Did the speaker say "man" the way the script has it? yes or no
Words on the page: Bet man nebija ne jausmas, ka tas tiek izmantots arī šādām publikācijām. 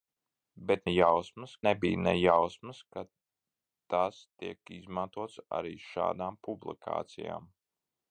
no